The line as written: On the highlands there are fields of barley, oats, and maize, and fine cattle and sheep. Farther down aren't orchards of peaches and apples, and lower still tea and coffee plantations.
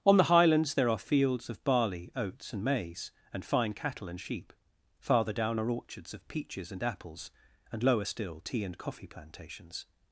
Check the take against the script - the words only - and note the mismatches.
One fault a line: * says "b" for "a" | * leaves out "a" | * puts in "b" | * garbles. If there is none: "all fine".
* says "are" for "aren't"